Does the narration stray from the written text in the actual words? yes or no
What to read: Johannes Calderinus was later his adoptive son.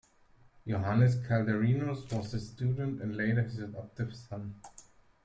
yes